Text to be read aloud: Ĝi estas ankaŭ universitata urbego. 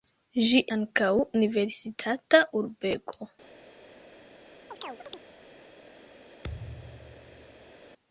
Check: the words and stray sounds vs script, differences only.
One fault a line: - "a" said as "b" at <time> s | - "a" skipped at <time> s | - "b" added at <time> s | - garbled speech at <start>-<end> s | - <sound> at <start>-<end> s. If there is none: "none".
- "estas" skipped at 0.6 s
- chirp at 4.7-5.2 s
- thud at 6.4-7.7 s